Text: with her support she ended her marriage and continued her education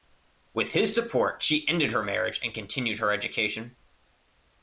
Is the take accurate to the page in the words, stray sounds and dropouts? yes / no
no